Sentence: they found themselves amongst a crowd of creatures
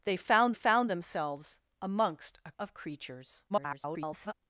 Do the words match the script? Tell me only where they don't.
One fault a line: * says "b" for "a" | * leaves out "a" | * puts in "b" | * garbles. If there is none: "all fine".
* puts in "found"
* leaves out "crowd"
* garbles